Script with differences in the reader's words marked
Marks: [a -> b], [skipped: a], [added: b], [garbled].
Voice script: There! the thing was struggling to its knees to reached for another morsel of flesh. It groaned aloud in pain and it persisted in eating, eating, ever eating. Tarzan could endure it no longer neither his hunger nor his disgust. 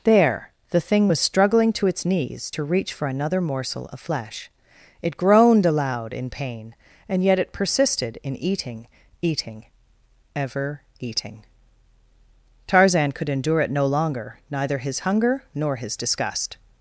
There! the thing was struggling to its knees to [reached -> reach] for another morsel of flesh. It groaned aloud in pain and [added: yet] it persisted in eating, eating, ever eating. Tarzan could endure it no longer neither his hunger nor his disgust.